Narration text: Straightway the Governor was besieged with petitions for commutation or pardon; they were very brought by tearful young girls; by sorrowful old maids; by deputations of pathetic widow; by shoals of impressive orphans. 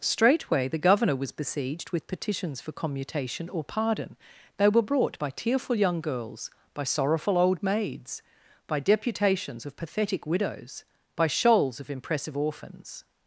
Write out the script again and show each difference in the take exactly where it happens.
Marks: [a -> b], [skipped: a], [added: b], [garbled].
Straightway the Governor was besieged with petitions for commutation or pardon; they were [skipped: very] brought by tearful young girls; by sorrowful old maids; by deputations of pathetic [widow; -> widows] by shoals of impressive orphans.